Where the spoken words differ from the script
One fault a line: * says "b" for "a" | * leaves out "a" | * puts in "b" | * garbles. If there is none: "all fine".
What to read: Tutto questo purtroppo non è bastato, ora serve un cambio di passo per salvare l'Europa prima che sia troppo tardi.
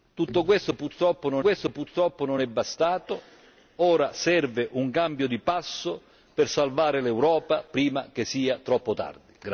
* puts in "questo purtroppo non"